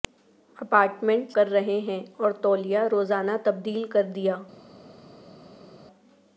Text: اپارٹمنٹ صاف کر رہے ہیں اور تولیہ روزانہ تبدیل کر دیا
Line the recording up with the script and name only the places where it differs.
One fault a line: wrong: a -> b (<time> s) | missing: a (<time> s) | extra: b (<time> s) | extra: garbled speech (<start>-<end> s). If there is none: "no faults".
missing: صاف (1.3 s)